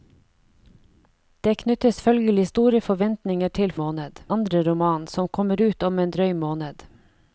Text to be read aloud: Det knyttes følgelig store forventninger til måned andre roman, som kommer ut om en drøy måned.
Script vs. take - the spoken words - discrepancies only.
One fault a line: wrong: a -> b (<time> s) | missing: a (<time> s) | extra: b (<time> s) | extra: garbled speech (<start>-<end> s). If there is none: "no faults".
no faults